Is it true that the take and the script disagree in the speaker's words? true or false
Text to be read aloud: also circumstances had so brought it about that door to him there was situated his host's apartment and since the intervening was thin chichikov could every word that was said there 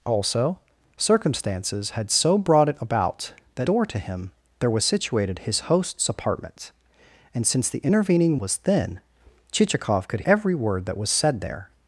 false